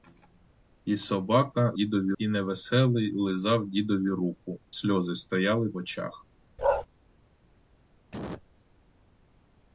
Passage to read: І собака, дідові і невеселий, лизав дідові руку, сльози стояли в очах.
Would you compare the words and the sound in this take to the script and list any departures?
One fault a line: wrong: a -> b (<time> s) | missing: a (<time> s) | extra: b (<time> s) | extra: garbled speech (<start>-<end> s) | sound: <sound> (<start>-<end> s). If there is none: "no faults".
sound: bark (6.6-6.9 s)
sound: cough (8.1-8.5 s)